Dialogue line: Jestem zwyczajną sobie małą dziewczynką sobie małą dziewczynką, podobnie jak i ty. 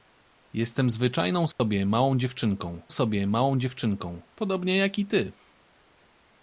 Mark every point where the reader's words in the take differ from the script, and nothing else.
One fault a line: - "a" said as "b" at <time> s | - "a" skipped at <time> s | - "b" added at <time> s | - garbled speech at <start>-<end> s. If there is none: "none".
none